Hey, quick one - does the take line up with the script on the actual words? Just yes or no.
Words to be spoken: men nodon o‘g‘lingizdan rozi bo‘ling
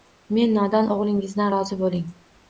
yes